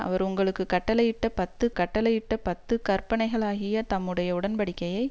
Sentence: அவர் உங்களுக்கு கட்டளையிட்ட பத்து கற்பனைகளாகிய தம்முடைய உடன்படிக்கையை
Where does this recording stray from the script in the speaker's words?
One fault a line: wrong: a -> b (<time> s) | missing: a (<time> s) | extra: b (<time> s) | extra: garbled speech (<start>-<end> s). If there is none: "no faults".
extra: கட்டளையிட்ட பத்து (1.7 s)